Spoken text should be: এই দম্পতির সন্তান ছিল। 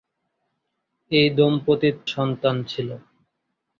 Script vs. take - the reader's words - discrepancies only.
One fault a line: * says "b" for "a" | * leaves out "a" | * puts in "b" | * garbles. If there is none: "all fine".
all fine